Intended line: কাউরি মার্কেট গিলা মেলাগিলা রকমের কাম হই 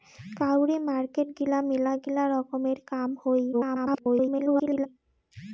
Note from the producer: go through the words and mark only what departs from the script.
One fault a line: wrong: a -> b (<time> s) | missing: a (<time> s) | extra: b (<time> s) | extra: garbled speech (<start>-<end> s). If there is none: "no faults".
extra: garbled speech (3.5-4.9 s)